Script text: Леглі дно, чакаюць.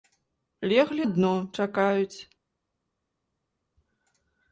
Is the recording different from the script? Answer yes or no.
no